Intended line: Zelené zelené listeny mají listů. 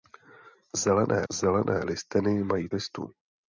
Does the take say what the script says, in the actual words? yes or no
yes